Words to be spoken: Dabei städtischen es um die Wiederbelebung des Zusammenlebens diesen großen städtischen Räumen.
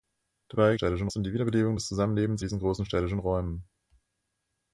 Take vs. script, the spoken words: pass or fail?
pass